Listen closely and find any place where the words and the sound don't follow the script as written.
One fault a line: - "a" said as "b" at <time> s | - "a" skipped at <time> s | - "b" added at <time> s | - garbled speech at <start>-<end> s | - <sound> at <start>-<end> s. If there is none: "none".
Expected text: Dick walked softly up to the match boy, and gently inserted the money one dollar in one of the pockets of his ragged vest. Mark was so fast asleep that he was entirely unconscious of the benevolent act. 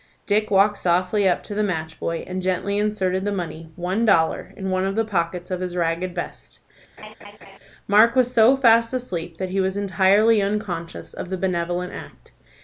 - laugh at 7.0-7.6 s